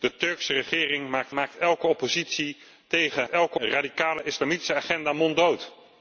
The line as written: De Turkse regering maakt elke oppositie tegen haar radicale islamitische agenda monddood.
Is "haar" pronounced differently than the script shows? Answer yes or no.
yes